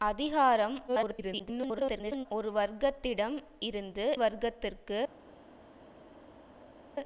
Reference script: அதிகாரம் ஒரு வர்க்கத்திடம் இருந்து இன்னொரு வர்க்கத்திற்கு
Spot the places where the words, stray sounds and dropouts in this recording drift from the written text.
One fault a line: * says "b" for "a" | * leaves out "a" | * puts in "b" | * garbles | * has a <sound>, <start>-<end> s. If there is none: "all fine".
* garbles
* leaves out "இன்னொரு"